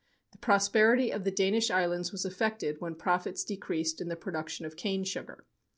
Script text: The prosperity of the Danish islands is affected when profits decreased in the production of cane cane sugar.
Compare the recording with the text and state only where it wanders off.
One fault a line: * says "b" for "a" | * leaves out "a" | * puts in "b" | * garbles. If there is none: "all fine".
* says "was" for "is"
* leaves out "cane"